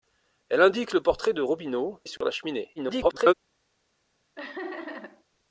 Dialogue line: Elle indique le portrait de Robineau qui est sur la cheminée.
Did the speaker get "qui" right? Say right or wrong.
wrong